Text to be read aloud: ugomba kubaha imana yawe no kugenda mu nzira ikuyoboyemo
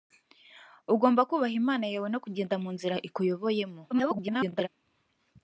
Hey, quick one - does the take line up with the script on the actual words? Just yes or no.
no